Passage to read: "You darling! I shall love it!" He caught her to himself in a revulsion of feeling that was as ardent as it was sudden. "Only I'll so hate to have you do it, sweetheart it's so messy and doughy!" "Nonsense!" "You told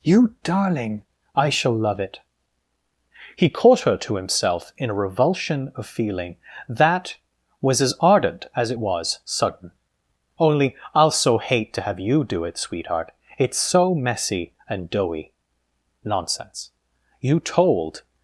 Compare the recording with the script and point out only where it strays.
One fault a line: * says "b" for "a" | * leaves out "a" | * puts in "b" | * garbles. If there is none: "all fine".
all fine